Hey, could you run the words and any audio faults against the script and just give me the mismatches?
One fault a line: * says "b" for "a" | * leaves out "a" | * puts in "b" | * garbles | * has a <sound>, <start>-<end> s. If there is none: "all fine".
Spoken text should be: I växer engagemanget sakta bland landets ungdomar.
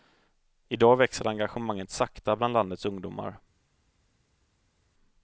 * puts in "dag"